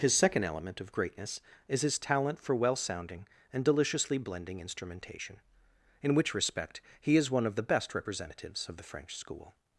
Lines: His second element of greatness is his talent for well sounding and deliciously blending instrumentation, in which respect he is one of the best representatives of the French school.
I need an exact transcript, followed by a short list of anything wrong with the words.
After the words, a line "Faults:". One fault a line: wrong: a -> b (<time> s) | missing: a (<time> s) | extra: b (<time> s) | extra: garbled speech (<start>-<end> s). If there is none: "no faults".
His second element of greatness is his talent for well sounding and deliciously blending instrumentation, in which respect he is one of the best representatives of the French school.
Faults:
no faults